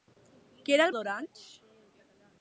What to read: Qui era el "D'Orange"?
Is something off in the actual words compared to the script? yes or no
no